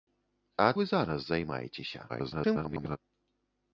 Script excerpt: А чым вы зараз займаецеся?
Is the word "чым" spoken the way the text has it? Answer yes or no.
no